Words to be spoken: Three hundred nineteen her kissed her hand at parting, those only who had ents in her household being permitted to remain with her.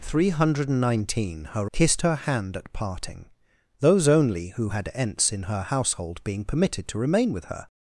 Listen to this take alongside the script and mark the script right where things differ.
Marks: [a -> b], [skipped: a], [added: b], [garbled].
Three hundred nineteen her kissed her hand at parting, those only who had ents in her household being permitted to remain with her.